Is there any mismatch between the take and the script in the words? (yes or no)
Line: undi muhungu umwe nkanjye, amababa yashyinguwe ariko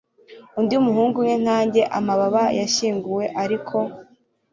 no